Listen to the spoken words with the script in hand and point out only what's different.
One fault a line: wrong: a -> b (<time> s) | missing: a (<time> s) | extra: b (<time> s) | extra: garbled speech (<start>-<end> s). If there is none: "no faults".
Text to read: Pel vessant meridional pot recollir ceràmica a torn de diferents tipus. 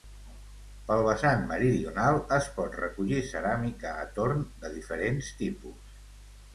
extra: es (2.4 s)